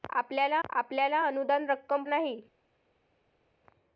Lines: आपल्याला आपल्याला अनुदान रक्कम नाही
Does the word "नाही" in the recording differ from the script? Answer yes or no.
no